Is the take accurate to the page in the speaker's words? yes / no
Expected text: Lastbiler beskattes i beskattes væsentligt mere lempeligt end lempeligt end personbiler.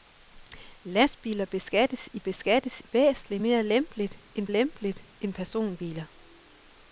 yes